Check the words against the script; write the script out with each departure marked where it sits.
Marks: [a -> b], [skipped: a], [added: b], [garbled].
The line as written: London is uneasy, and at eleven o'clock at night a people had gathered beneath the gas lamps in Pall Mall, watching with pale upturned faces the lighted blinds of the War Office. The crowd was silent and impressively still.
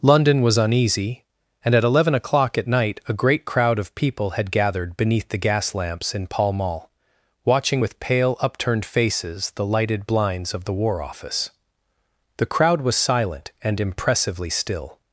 London [is -> was] uneasy, and at eleven o'clock at night a [added: great crowd of] people had gathered beneath the gas lamps in Pall Mall, watching with pale upturned faces the lighted blinds of the War Office. The crowd was silent and impressively still.